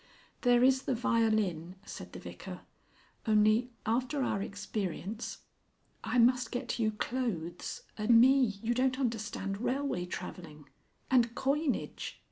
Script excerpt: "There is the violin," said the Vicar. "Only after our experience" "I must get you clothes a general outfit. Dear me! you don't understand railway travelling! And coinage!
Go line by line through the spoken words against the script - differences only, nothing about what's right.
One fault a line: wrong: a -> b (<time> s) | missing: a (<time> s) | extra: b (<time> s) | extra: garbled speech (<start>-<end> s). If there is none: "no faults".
missing: general outfit Dear (8.1 s)